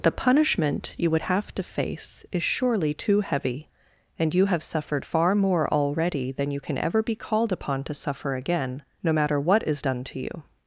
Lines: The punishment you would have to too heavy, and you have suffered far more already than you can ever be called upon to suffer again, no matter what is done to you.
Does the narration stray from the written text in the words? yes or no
yes